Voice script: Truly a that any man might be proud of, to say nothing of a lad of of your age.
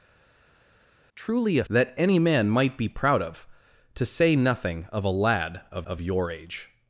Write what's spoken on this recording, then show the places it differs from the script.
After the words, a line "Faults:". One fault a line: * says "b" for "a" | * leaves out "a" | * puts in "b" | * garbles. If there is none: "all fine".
Truly a that any man might be proud of, to say nothing of a lad of of your age.
Faults:
all fine